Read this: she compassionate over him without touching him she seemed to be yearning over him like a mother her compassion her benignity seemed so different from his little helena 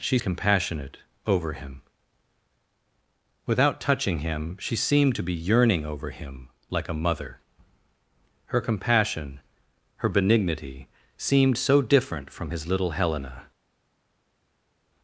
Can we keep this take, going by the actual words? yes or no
yes